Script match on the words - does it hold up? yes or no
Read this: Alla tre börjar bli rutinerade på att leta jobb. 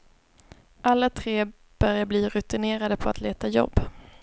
yes